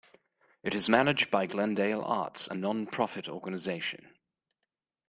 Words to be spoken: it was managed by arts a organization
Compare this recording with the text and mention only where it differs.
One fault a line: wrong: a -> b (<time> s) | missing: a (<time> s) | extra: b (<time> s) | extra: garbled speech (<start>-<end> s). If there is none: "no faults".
wrong: was -> is (0.7 s)
extra: glendale (1.5 s)
extra: non profit (2.5 s)